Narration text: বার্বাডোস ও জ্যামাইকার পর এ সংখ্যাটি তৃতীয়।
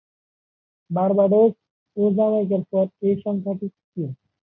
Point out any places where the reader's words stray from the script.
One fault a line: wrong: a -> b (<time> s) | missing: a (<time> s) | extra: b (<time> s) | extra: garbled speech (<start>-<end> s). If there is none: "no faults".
no faults